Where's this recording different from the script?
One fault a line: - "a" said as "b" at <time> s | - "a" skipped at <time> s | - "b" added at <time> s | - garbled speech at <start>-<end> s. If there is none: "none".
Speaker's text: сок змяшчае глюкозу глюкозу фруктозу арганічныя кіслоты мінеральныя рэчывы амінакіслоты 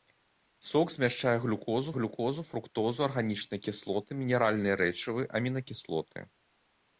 none